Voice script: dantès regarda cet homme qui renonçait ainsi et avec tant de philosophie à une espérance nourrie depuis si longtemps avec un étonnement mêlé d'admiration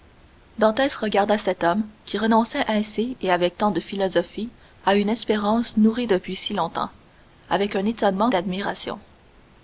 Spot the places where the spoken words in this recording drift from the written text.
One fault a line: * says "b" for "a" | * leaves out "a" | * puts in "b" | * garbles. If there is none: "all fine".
* leaves out "mêlé"